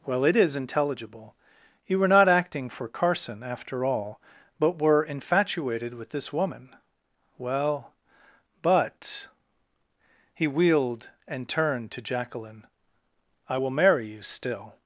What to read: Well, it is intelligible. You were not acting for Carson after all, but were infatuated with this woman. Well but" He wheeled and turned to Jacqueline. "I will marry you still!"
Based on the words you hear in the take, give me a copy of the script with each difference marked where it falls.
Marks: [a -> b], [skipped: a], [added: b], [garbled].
Well, it is intelligible. You were not acting for Carson after all, but were infatuated with this woman. Well but" He wheeled and turned to Jacqueline. "I will marry you still!"